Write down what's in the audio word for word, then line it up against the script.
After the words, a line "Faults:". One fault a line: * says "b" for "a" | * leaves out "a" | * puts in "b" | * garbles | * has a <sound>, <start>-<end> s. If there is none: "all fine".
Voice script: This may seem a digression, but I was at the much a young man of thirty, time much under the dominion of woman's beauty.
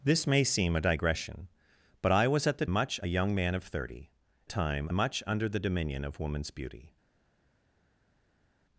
This may seem a digression, but I was at the much a young man of thirty, time much under the dominion of woman's beauty.
Faults:
all fine